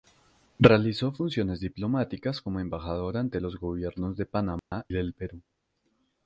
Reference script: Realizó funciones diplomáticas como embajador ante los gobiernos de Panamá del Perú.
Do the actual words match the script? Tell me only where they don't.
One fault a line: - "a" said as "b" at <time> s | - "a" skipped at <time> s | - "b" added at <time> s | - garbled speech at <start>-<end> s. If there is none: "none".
none